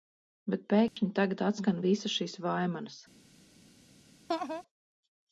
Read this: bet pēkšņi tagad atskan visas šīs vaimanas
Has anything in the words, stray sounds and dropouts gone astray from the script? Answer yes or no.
yes